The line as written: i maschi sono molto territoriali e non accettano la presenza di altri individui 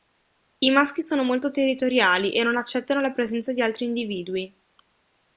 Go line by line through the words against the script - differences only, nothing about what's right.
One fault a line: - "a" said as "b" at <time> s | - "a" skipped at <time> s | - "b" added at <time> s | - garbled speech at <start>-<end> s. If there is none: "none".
none